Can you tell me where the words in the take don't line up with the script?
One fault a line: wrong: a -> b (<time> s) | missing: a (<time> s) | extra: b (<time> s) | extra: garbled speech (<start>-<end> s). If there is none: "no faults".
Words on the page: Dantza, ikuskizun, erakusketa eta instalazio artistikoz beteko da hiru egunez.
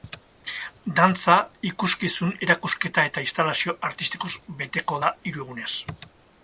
no faults